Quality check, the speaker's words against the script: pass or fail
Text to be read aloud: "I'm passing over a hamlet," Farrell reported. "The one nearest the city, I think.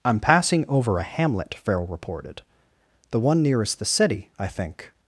pass